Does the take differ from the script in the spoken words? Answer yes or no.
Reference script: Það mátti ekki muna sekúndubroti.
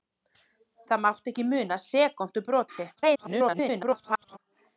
yes